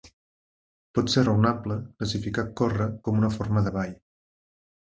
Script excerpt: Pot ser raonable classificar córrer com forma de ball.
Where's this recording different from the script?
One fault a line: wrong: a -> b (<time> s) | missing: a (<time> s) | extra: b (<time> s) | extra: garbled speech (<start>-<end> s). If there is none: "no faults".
extra: una (3.2 s)